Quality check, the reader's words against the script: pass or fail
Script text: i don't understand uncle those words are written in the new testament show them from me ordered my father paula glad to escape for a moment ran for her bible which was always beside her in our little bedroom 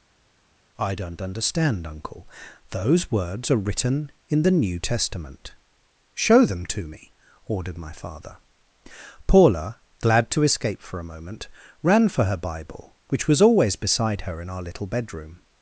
fail